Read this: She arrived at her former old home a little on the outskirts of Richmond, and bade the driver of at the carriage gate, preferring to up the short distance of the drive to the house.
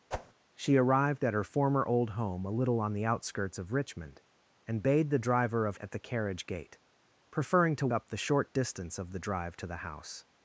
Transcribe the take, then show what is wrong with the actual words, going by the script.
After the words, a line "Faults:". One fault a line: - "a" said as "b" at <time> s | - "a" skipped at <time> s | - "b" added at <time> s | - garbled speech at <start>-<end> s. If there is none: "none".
She arrived at her former old home a little on the outskirts of Richmond, and bade the driver of at the carriage gate, preferring to up the short distance of the drive to the house.
Faults:
none